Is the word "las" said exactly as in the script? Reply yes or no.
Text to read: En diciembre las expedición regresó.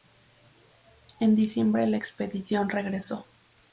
no